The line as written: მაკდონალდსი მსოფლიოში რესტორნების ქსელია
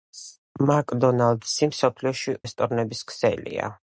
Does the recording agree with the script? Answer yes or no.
yes